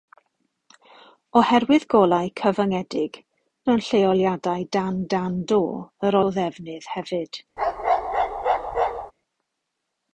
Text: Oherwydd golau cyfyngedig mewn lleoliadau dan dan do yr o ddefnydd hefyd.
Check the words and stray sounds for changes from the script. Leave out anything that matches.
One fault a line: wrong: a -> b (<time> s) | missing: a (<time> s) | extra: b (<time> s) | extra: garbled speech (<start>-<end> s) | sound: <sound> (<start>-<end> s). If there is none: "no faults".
sound: bark (7.6-9.1 s)